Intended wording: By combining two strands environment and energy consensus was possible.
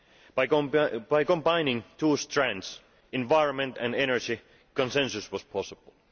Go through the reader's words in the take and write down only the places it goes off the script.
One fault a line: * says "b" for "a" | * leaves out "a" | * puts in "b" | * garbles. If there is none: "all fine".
all fine